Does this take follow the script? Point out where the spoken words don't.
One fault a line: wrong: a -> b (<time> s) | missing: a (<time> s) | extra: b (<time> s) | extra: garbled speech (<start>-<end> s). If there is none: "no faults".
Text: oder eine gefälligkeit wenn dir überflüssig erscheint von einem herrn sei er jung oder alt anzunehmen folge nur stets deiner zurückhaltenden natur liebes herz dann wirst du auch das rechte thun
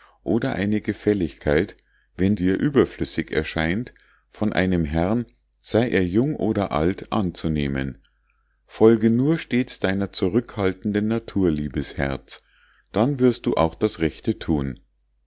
no faults